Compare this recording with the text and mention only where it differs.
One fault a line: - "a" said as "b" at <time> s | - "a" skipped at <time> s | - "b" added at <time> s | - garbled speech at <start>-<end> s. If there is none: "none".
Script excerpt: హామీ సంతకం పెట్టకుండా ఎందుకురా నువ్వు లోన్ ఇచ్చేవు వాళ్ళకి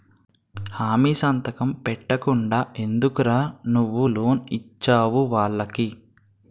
none